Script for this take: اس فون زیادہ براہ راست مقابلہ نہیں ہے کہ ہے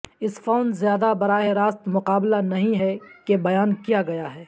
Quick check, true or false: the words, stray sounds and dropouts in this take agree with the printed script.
false